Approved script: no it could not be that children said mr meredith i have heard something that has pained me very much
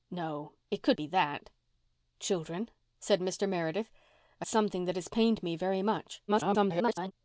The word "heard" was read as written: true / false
false